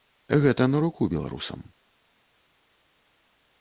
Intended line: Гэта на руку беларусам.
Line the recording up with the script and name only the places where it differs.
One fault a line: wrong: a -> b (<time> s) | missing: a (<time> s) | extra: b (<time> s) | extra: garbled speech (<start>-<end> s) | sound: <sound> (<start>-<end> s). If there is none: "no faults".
no faults